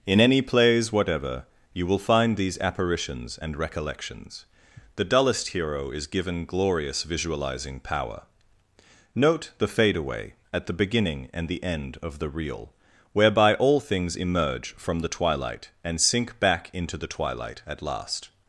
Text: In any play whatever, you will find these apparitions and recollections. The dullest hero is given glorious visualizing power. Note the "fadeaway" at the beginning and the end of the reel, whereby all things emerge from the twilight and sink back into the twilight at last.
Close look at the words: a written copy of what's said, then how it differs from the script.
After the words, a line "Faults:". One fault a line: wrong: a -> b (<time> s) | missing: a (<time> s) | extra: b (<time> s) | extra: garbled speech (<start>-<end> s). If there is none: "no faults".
In any plays whatever, you will find these apparitions and recollections. The dullest hero is given glorious visualizing power. Note the "fadeaway" at the beginning and the end of the reel, whereby all things emerge from the twilight and sink back into the twilight at last.
Faults:
wrong: play -> plays (0.4 s)